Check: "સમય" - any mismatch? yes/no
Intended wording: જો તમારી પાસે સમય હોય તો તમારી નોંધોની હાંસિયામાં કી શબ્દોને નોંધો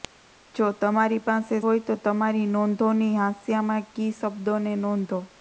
yes